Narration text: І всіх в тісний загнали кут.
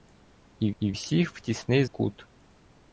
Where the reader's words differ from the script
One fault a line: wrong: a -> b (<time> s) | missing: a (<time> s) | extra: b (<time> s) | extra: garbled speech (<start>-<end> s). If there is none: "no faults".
extra: і (0.8 s)
missing: загнали (1.8 s)